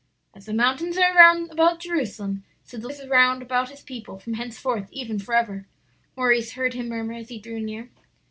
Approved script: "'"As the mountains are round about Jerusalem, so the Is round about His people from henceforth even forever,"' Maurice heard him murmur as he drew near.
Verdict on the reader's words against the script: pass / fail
pass